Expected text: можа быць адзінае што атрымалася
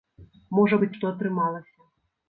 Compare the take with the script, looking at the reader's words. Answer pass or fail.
fail